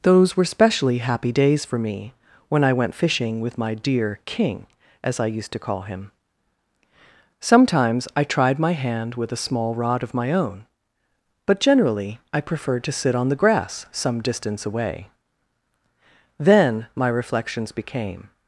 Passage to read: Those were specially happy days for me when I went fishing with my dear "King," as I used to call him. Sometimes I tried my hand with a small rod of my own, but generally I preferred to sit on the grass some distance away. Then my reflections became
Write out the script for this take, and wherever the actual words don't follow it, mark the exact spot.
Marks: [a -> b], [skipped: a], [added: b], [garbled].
Those were specially happy days for me when I went fishing with my dear "King," as I used to call him. Sometimes I tried my hand with a small rod of my own, but generally I preferred to sit on the grass some distance away. Then my reflections became